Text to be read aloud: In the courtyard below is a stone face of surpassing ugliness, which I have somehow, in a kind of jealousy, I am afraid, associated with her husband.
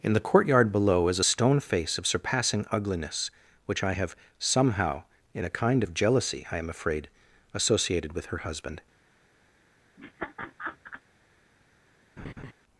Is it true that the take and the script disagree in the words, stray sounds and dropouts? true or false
true